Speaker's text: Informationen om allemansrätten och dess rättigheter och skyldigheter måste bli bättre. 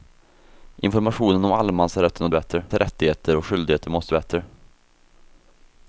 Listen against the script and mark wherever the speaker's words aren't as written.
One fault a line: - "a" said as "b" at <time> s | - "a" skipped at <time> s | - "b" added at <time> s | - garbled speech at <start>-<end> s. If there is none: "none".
- "dess" said as "bättre" at 2.3 s
- "bli" skipped at 4.1 s